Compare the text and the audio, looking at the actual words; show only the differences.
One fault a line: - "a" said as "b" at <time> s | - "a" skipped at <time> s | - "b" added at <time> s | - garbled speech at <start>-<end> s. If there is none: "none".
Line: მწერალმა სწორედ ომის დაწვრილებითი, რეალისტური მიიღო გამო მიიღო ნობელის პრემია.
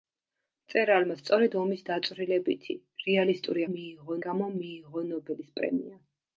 none